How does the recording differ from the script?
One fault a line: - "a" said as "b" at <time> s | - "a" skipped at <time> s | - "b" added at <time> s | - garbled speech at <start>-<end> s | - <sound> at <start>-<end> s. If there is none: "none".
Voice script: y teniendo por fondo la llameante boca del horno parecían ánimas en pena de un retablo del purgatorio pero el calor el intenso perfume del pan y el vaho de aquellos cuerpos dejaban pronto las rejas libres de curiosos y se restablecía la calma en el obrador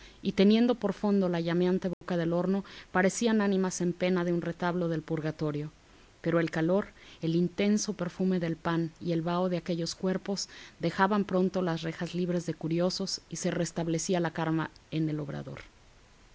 - dropout at 1.9-2.0 s